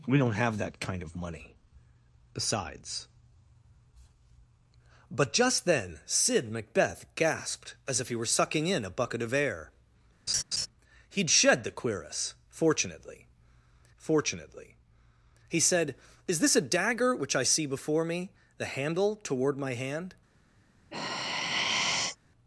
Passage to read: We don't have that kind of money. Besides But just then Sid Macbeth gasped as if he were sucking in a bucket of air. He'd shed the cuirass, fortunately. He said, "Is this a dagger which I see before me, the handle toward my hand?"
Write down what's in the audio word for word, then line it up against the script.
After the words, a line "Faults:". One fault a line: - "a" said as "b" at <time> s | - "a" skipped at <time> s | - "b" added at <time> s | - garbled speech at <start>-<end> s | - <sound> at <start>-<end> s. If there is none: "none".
We don't have that kind of money. Besides But just then Sid Macbeth gasped as if he were sucking in a bucket of air. He'd shed the cuirass, fortunately fortunately. He said, "Is this a dagger which I see before me, the handle toward my hand?"
Faults:
- laugh at 10.3-10.7 s
- "fortunately" added at 14.0 s
- sigh at 20.9-22.2 s